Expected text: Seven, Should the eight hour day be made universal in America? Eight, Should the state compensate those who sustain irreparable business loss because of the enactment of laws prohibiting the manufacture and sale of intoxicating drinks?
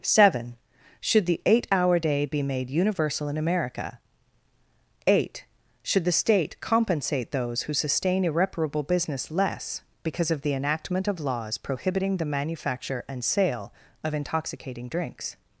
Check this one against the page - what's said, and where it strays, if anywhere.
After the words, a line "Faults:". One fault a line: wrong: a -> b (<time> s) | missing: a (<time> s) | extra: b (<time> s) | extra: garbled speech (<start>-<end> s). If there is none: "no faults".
Seven, Should the eight hour day be made universal in America? Eight, Should the state compensate those who sustain irreparable business less because of the enactment of laws prohibiting the manufacture and sale of intoxicating drinks?
Faults:
wrong: loss -> less (9.3 s)